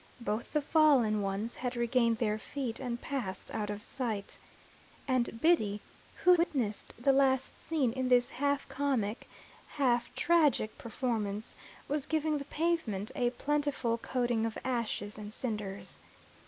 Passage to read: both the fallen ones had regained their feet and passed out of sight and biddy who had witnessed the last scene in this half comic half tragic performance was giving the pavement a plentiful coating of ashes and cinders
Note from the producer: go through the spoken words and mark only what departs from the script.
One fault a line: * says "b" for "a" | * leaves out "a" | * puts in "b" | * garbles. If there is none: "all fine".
* leaves out "had"